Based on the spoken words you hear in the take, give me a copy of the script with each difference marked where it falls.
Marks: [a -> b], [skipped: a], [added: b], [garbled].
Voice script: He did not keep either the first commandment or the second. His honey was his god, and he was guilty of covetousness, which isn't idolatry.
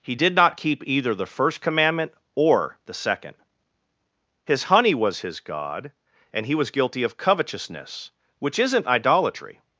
He did not keep either the first commandment or the second. His honey was his god, and he was guilty of covetousness, which isn't idolatry.